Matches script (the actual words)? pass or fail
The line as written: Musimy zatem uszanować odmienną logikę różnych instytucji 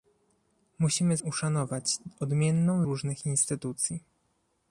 fail